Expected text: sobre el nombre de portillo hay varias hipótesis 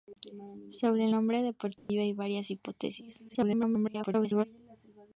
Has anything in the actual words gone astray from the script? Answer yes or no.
yes